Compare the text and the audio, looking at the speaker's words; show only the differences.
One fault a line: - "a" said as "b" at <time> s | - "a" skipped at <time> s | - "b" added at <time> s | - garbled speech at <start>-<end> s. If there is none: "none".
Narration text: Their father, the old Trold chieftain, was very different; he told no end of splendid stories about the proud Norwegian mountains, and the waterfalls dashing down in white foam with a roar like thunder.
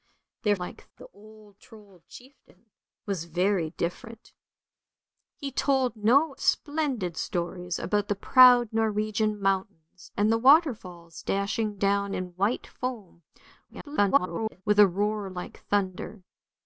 - "father" said as "like" at 0.5 s
- "end of" skipped at 6.3 s
- garbled speech at 13.7-14.6 s